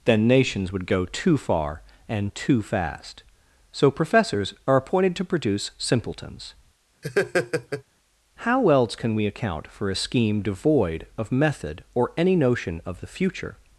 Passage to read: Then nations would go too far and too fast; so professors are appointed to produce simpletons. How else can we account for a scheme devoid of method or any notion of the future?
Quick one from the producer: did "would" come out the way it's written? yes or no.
yes